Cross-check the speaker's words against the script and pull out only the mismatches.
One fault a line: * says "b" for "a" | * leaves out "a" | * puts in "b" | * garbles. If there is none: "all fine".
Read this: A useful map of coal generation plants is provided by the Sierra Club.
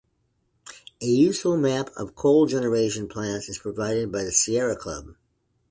all fine